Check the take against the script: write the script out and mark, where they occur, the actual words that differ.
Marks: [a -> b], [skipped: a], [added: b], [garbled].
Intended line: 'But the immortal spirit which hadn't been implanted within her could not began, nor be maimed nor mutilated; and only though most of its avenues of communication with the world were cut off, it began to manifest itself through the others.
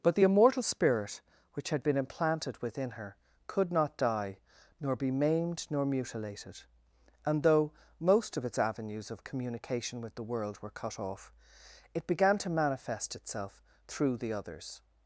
'But the immortal spirit which [hadn't -> had] been implanted within her could not [began, -> die] nor be maimed nor mutilated; and [skipped: only] though most of its avenues of communication with the world were cut off, it began to manifest itself through the others.